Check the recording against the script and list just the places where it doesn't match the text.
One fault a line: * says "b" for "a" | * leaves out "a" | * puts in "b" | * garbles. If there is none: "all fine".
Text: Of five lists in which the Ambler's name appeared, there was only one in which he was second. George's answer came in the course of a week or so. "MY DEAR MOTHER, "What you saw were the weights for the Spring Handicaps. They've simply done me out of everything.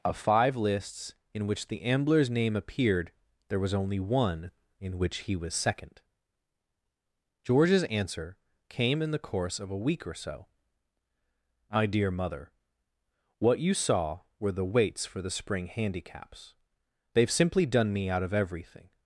all fine